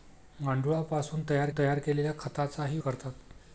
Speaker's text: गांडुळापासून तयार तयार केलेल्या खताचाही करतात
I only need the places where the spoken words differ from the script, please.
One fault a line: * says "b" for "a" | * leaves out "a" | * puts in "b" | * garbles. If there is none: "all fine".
all fine